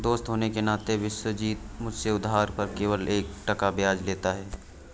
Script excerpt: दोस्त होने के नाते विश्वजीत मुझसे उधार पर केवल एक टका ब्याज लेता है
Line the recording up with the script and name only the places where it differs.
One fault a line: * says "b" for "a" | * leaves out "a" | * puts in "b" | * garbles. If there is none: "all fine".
all fine